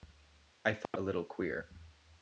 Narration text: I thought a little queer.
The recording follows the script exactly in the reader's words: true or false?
true